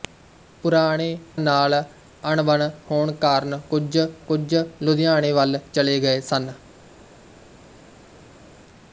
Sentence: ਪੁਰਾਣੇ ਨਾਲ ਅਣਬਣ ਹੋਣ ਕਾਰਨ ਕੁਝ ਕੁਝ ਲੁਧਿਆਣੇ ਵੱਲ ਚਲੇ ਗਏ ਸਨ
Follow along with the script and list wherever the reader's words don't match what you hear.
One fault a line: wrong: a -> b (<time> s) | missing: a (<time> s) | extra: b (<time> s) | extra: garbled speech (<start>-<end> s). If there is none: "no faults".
no faults